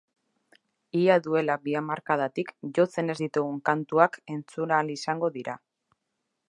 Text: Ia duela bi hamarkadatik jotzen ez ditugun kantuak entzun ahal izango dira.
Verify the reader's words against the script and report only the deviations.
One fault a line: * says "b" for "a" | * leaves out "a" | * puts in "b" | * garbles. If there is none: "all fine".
all fine